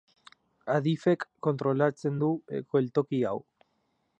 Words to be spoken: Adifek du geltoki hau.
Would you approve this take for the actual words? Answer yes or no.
no